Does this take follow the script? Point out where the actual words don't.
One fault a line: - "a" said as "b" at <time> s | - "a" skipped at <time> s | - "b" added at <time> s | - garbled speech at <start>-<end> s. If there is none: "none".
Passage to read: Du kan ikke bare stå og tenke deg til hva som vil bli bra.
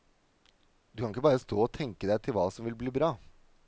none